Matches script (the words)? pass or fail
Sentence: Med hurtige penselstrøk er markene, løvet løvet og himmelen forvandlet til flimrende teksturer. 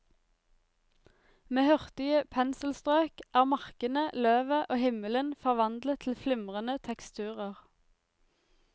fail